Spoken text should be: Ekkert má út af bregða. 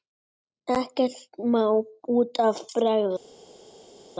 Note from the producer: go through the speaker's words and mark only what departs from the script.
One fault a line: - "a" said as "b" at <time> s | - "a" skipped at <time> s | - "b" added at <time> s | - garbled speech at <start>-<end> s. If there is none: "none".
none